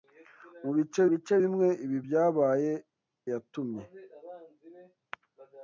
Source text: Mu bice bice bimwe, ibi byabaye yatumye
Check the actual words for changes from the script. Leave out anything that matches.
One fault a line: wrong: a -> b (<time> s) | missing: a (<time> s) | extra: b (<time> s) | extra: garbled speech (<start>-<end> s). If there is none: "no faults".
no faults